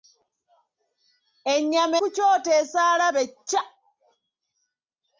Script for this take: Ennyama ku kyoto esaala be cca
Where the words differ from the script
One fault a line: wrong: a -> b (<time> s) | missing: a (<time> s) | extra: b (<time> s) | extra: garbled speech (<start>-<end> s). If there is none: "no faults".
no faults